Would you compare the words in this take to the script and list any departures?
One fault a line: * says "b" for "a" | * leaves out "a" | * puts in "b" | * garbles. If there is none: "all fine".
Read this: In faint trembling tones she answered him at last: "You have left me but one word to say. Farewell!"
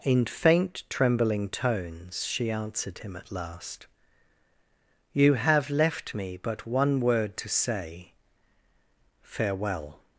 all fine